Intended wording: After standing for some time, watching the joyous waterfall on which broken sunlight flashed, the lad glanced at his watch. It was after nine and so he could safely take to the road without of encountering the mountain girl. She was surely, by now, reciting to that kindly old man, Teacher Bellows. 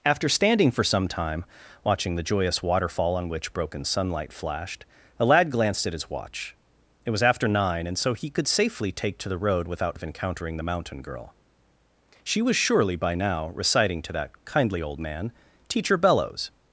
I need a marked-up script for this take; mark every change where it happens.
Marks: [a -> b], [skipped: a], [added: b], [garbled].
After standing for some time, watching the joyous waterfall on which broken sunlight flashed, the lad glanced at his watch. It was after nine and so he could safely take to the road without of encountering the mountain girl. She was surely, by now, reciting to that kindly old man, Teacher Bellows.